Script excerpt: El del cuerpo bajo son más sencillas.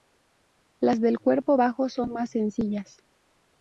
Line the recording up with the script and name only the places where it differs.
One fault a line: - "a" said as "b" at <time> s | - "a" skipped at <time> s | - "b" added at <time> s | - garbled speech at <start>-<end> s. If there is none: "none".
- "El" said as "Las" at 0.8 s